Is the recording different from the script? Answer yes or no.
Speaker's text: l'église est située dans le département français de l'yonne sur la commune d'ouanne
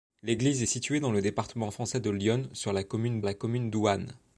yes